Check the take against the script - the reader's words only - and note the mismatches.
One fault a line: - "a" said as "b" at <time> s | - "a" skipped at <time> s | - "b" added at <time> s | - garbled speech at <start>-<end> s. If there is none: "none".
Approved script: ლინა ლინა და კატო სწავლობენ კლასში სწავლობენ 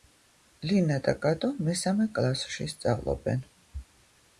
- "ლინა" skipped at 1.0 s
- "სწავლობენ" said as "მესამე" at 1.7 s